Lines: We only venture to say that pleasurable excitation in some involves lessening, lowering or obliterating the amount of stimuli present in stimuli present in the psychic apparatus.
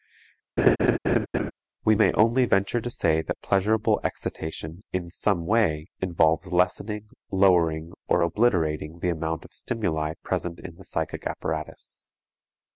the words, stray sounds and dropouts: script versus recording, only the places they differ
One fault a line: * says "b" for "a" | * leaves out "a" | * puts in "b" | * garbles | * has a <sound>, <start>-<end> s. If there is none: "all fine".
* has a laugh, 0.6-1.5 s
* puts in "may"
* puts in "way"
* leaves out "stimuli present in"